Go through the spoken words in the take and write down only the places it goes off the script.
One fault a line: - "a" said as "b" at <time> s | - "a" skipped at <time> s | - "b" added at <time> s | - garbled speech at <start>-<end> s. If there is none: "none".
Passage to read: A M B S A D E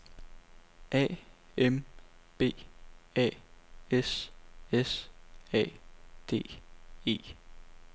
- "A S" added at 3.1 s